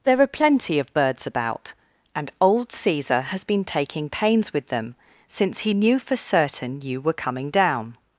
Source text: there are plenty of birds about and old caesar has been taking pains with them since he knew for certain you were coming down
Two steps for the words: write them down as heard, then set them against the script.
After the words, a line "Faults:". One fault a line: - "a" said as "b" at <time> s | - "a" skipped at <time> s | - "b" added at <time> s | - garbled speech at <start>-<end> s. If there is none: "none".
there are plenty of birds about and old caesar has been taking pains with them since he knew for certain you were coming down
Faults:
none